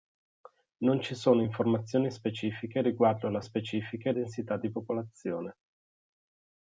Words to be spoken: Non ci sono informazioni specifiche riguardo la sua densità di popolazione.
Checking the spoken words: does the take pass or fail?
fail